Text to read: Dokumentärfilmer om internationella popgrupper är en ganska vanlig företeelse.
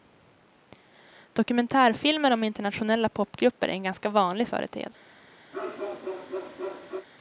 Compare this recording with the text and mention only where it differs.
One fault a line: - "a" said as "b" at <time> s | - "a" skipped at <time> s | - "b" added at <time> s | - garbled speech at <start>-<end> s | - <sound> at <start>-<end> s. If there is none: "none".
- bark at 5.5-7.1 s